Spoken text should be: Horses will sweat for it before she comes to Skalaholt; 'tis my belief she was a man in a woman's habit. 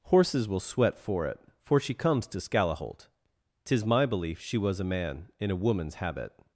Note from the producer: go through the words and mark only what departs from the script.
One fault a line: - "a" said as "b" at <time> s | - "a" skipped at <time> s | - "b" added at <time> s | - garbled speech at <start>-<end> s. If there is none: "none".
- "before" said as "for" at 1.7 s